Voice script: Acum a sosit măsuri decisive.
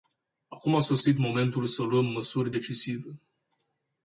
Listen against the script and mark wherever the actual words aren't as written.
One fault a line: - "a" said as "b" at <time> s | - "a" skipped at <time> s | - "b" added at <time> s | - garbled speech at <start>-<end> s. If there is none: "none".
- "momentul să luăm" added at 1.2 s